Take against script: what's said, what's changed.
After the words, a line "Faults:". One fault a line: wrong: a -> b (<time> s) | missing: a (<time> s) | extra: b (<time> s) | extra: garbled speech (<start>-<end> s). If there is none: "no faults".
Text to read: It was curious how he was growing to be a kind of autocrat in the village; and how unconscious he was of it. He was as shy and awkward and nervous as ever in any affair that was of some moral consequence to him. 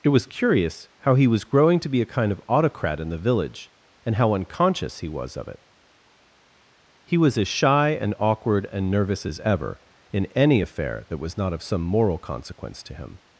It was curious how he was growing to be a kind of autocrat in the village; and how unconscious he was of it. He was as shy and awkward and nervous as ever in any affair that was not of some moral consequence to him.
Faults:
extra: not (11.4 s)